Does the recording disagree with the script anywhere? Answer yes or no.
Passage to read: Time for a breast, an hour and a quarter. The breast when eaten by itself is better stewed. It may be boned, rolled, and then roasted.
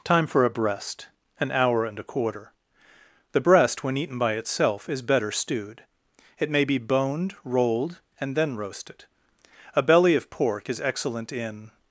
yes